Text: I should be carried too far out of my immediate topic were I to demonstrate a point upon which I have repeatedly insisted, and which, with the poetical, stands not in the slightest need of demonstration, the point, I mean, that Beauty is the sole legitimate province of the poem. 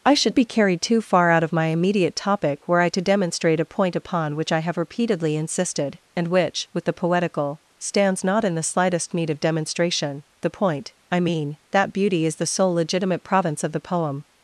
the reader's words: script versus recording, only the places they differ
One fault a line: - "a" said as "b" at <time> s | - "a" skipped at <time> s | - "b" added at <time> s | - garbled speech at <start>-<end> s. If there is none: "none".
none